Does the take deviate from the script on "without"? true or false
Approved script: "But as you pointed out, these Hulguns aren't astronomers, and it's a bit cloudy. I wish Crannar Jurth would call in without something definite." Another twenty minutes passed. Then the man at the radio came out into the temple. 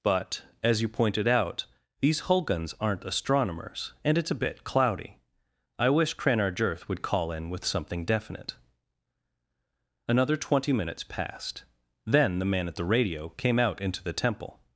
true